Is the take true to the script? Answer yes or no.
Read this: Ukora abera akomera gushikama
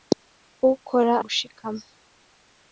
no